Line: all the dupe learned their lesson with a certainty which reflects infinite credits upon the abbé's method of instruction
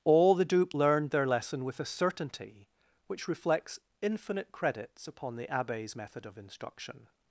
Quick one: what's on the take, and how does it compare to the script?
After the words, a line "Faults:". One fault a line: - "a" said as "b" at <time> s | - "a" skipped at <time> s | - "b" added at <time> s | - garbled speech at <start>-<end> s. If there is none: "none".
all the dupe learned their lesson with a certainty which reflects infinite credits upon the abbé's method of instruction
Faults:
none